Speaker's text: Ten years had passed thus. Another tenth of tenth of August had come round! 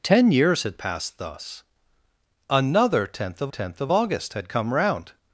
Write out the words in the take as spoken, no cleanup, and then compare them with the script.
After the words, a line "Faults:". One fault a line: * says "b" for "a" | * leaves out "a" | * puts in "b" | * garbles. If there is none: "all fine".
Ten years had passed thus. Another tenth of tenth of August had come round!
Faults:
all fine